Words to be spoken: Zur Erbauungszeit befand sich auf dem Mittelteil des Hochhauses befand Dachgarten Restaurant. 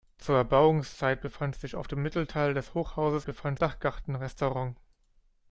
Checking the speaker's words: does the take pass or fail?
pass